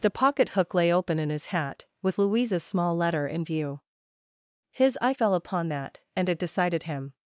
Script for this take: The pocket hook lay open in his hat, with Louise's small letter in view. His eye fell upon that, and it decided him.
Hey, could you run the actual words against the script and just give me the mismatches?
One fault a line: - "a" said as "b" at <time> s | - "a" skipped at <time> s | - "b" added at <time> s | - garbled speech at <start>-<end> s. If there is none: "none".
none